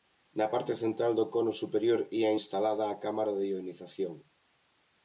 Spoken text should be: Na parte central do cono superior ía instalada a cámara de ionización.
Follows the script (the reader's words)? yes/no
yes